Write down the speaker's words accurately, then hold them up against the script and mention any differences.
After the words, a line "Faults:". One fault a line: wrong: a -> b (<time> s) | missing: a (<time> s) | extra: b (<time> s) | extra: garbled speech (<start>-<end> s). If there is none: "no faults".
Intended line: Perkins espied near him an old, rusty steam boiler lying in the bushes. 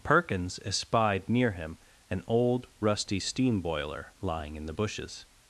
Perkins espied near him an old, rusty steam boiler lying in the bushes.
Faults:
no faults